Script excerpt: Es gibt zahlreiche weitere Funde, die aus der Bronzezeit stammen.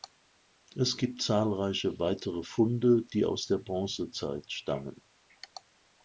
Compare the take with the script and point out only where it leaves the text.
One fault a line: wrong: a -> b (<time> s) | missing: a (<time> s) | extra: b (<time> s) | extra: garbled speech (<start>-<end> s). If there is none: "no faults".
no faults